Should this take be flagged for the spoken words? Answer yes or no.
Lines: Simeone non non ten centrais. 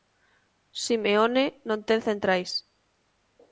yes